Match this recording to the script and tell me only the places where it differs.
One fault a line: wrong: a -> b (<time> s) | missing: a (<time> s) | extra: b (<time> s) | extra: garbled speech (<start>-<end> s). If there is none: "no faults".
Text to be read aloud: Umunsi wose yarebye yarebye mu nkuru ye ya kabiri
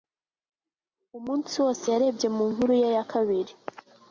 missing: yarebye (2.3 s)